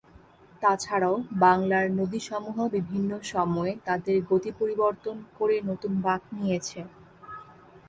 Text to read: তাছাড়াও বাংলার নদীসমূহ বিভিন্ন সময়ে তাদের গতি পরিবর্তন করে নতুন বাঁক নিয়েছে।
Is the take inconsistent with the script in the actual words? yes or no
no